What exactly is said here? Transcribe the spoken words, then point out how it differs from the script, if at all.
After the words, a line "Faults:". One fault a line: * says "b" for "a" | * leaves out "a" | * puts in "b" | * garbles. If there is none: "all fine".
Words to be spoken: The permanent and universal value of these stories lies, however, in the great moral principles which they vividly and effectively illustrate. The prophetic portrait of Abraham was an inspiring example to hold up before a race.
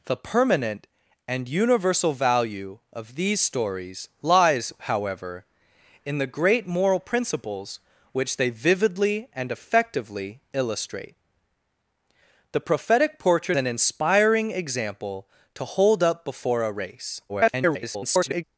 The permanent and universal value of these stories lies, however, in the great moral principles which they vividly and effectively illustrate. The prophetic portrait an inspiring example to hold up before a race. [garbled]
Faults:
* leaves out "of Abraham was"
* garbles